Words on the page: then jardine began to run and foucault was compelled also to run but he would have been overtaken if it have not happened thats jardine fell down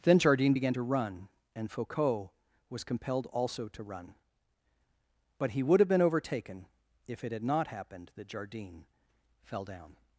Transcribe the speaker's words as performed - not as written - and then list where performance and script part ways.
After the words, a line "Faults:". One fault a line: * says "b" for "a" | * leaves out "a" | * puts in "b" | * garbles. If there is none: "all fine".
then jardine began to run and foucault was compelled also to run but he would have been overtaken if it had not happened that jardine fell down
Faults:
* says "had" for "have"
* says "that" for "thats"